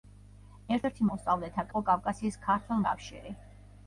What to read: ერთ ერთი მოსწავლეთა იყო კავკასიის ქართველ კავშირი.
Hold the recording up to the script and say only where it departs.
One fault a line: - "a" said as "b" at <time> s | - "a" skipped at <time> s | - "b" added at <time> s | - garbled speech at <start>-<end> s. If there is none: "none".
none